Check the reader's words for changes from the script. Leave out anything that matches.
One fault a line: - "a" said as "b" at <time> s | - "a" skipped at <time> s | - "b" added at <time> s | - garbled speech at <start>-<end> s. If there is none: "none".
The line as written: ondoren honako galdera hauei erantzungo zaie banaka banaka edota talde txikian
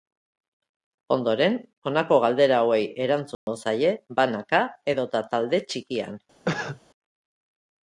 - "banaka" skipped at 4.7 s